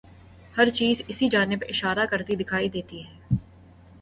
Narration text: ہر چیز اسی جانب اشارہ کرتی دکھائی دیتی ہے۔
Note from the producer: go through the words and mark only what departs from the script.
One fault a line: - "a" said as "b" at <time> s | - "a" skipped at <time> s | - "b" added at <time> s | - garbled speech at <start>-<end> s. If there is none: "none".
none